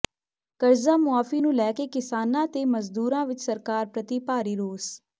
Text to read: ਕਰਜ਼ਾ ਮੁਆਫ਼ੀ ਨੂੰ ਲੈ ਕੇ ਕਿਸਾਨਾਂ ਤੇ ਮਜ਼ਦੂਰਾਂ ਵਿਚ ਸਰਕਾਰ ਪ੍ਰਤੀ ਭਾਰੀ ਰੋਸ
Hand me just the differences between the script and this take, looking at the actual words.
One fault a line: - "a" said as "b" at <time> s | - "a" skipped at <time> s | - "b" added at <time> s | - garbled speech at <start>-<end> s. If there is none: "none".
none